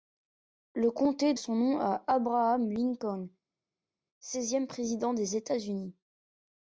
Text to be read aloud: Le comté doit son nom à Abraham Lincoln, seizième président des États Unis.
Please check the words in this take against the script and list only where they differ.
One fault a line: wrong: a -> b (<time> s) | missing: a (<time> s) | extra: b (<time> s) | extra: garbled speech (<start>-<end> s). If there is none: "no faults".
missing: doit (1.4 s)